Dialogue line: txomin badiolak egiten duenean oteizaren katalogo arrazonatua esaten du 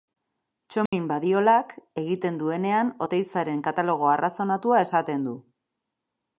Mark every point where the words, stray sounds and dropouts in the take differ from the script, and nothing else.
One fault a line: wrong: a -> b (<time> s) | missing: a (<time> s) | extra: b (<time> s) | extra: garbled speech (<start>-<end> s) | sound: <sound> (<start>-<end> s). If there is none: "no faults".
sound: dropout (0.9-0.9 s)